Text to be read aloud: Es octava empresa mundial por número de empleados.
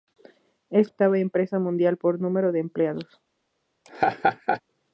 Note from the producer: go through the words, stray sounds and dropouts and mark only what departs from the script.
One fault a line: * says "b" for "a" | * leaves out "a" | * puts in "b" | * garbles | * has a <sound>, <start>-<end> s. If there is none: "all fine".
* has a laugh, 3.8-4.6 s